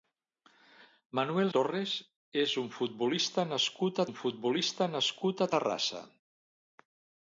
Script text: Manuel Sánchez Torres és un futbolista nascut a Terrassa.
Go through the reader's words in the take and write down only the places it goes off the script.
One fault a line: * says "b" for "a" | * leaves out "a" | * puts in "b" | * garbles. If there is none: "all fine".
* leaves out "Sánchez"
* puts in "un futbolista nascut"